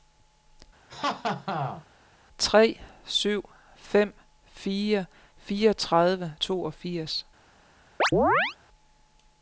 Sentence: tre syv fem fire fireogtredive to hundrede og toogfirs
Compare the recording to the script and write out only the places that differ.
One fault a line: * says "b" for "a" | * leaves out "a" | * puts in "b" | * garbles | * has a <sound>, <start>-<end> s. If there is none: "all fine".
* has a laugh, 0.9-1.8 s
* leaves out "to hundrede og"
* has a chirp, 8.0-8.6 s